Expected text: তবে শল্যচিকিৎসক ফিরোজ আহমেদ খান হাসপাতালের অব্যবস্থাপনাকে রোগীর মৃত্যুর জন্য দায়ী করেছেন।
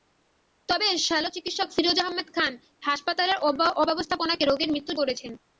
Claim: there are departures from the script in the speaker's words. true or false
true